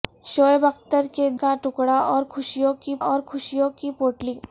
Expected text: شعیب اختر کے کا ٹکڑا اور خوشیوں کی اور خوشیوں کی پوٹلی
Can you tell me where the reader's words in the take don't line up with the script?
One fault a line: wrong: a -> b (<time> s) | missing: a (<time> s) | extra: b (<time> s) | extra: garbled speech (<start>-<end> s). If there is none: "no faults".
no faults